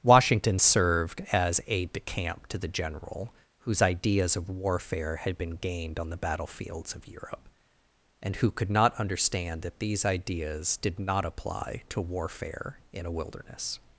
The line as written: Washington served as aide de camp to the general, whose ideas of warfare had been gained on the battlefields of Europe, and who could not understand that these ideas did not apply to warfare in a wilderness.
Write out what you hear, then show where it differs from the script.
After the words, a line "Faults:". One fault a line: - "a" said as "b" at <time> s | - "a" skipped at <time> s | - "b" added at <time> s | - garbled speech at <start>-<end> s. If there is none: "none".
Washington served as aide de camp to the general, whose ideas of warfare had been gained on the battlefields of Europe, and who could not understand that these ideas did not apply to warfare in a wilderness.
Faults:
none